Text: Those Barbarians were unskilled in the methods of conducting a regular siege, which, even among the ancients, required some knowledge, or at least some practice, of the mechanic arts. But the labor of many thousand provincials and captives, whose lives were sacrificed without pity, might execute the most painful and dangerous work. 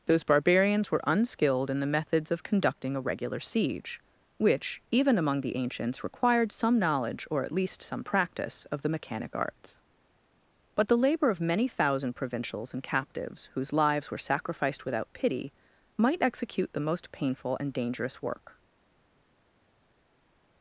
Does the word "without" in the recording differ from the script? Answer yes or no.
no